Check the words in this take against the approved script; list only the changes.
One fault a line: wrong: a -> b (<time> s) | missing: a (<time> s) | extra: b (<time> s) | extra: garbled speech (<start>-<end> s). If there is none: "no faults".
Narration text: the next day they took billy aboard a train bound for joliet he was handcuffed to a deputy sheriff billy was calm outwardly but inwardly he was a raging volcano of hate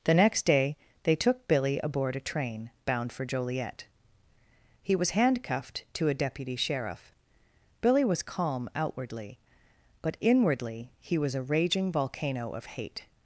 no faults